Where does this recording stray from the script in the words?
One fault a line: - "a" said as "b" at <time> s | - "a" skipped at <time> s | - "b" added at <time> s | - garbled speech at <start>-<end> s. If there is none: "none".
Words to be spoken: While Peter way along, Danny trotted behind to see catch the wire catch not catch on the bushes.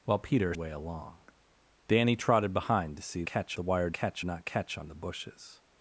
none